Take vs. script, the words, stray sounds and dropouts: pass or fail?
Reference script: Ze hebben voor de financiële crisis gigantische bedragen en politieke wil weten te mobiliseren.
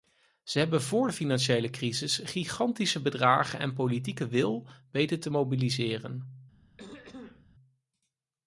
fail